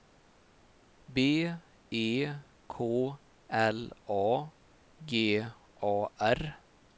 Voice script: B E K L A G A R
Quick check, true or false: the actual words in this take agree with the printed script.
true